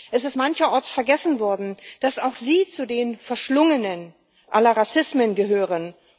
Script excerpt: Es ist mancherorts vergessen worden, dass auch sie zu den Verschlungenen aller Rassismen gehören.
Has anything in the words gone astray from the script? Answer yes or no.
no